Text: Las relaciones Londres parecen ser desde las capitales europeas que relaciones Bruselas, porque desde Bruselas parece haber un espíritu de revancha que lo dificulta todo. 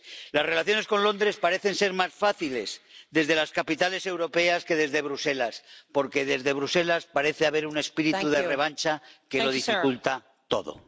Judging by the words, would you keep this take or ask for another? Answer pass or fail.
fail